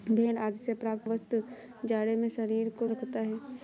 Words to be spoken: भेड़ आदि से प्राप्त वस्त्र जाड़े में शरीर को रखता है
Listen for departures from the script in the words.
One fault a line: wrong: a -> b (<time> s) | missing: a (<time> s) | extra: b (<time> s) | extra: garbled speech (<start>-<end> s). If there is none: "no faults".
no faults